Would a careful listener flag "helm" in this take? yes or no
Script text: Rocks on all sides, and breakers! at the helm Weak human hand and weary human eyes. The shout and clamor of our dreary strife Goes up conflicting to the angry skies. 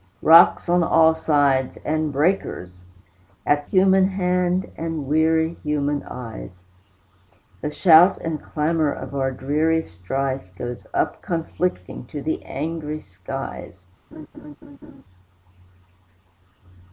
yes